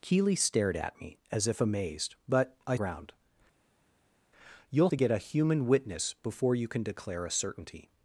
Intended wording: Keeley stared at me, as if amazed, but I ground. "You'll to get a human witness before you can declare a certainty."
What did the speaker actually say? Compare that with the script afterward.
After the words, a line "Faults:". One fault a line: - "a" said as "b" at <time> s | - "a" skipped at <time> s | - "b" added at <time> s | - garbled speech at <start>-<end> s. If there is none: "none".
Keeley stared at me, as if amazed, but I ground. "You'll to get a human witness before you can declare a certainty."
Faults:
none